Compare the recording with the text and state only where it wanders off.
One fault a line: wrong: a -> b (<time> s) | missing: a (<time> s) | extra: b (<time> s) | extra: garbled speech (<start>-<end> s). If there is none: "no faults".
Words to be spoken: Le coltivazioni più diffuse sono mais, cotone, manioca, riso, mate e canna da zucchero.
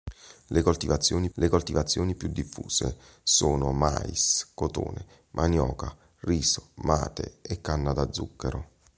extra: le coltivazioni (1.3 s)